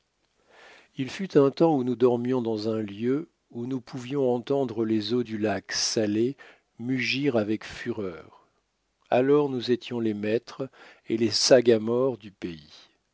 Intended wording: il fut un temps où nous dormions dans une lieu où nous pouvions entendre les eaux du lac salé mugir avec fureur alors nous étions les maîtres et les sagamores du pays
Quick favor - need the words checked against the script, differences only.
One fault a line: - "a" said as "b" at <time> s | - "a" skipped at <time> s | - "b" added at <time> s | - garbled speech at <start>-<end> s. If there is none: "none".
- "une" said as "un" at 2.7 s